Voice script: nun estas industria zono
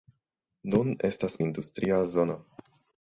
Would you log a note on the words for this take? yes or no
no